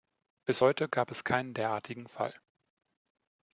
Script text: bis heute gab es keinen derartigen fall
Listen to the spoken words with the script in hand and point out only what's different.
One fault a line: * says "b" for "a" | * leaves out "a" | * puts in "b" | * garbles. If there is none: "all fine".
all fine